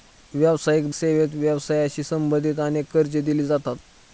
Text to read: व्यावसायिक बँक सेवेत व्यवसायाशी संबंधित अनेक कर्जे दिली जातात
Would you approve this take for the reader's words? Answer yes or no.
no